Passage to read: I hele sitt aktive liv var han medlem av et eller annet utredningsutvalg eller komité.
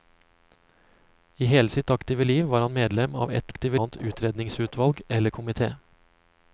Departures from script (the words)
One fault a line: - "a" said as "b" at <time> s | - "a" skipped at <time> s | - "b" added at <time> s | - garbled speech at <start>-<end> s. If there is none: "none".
- "eller" said as "aktive" at 3.5 s